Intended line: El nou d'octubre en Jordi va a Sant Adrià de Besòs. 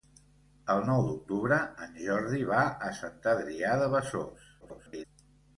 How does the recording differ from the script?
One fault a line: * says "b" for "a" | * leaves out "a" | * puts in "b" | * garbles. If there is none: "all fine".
* garbles